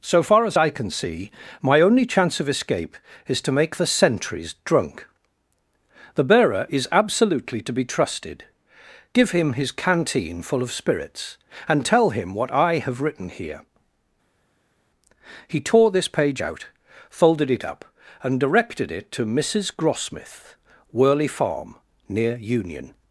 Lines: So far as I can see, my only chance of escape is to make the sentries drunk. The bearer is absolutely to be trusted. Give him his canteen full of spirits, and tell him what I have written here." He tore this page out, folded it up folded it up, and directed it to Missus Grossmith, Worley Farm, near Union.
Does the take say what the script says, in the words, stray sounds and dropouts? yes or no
no